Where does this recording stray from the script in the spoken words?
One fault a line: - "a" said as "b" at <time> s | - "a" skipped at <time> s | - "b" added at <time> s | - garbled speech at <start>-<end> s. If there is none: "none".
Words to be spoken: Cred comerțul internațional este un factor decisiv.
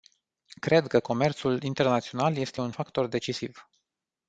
- "că" added at 0.9 s